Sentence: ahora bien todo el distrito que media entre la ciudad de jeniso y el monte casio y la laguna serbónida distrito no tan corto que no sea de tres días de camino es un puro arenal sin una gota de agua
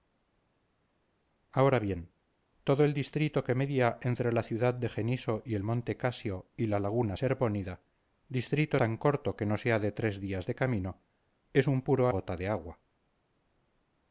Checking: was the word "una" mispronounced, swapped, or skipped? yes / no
yes